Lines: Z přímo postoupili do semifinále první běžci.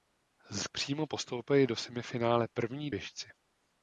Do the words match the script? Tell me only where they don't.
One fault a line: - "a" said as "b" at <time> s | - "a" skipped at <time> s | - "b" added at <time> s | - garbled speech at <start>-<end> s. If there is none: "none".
none